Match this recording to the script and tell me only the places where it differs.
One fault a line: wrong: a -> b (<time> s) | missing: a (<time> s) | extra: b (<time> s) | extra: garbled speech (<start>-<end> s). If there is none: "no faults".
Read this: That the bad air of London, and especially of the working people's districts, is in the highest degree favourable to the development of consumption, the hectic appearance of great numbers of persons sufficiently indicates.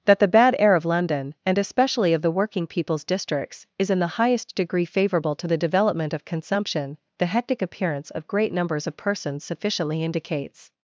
no faults